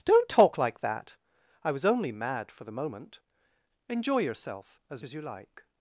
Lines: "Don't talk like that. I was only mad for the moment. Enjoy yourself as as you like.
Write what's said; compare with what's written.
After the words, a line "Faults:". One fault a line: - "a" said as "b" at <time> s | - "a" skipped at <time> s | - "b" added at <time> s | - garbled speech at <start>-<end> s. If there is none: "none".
"Don't talk like that. I was only mad for the moment. Enjoy yourself as as you like.
Faults:
none